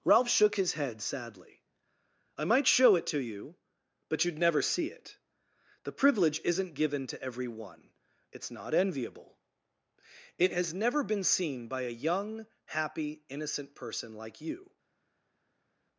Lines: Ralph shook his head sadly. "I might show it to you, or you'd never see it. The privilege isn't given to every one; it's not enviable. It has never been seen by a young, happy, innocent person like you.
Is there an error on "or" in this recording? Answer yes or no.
yes